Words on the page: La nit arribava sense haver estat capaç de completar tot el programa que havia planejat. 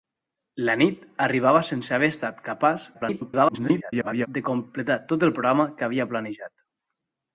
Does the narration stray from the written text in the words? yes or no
yes